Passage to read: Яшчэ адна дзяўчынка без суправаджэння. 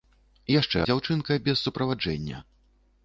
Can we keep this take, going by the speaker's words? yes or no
no